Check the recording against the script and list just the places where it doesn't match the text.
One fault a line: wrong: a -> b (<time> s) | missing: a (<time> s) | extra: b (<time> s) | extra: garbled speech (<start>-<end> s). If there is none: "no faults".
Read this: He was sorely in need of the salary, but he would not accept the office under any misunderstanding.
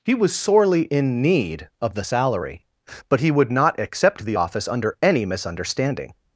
no faults